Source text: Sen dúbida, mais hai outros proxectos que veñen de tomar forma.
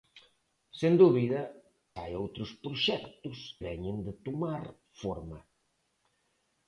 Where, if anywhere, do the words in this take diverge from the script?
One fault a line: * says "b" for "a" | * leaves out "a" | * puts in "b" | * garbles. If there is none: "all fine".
* leaves out "mais"
* leaves out "que"